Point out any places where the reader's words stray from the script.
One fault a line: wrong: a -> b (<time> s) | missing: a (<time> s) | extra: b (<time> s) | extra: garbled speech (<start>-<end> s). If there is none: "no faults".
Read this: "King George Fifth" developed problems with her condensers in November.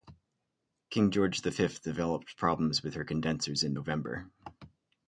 extra: the (1.4 s)